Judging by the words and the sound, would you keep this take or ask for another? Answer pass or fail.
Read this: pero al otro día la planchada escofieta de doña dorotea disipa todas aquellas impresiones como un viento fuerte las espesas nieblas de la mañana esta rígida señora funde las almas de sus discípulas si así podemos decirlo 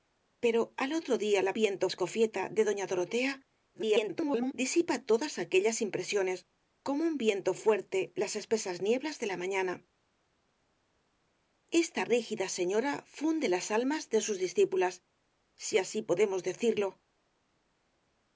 fail